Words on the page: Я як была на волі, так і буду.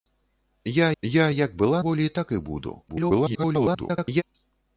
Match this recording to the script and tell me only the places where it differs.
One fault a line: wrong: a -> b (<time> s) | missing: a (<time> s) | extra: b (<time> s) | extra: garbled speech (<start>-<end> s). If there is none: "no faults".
extra: я (1.0 s)
missing: на (1.8 s)
extra: garbled speech (2.9-4.2 s)